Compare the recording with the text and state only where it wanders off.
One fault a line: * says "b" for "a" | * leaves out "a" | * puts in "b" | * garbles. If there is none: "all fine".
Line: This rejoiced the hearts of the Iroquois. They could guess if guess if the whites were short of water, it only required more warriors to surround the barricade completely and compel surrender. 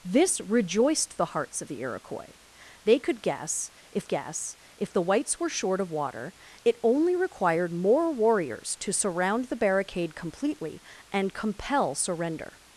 all fine